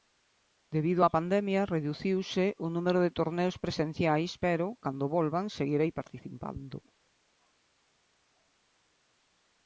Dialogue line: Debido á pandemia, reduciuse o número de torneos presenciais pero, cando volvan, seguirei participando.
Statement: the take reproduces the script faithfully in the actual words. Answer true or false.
true